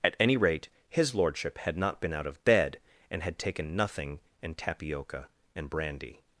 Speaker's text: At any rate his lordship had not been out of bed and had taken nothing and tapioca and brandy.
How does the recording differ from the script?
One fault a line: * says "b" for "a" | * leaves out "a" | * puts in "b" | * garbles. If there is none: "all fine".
all fine